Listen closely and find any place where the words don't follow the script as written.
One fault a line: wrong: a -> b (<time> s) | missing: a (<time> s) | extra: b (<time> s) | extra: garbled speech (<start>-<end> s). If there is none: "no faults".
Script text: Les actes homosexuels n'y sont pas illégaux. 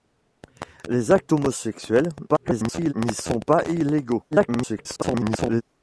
extra: garbled speech (2.3-2.9 s)
extra: garbled speech (4.3-5.6 s)